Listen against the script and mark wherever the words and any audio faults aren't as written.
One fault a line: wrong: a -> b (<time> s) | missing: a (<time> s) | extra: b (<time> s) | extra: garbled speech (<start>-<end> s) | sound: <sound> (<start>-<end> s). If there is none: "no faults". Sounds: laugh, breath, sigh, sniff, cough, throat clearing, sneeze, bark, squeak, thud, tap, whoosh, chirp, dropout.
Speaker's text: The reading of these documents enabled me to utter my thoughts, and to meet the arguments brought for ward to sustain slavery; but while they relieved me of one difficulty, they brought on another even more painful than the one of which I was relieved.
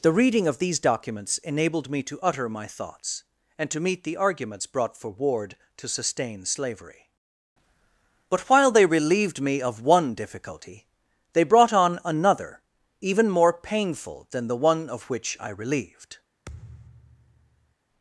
missing: was (15.5 s)
sound: thud (16.5-17.8 s)